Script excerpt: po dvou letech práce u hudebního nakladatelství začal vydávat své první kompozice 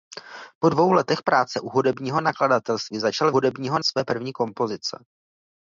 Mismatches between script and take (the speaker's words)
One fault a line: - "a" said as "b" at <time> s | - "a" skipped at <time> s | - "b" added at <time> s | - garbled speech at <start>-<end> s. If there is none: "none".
- "vydávat" said as "hudebního" at 3.3 s